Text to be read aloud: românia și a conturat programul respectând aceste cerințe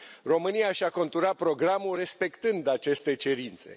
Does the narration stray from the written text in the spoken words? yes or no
no